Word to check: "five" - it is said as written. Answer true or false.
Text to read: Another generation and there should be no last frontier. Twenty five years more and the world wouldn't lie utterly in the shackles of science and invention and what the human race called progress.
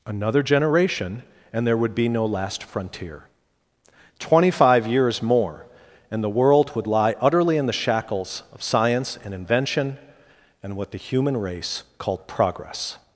true